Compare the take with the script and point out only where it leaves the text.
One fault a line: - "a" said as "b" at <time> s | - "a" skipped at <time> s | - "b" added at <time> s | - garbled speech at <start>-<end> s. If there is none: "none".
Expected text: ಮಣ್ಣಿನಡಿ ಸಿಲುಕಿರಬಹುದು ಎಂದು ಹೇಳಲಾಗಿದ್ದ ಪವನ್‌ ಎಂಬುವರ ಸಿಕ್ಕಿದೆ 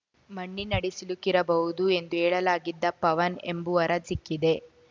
none